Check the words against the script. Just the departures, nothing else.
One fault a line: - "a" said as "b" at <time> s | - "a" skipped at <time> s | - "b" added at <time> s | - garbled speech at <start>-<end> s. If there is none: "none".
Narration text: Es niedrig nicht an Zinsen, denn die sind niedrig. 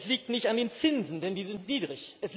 - "niedrig" said as "liegt" at 0.1 s
- "den" added at 0.6 s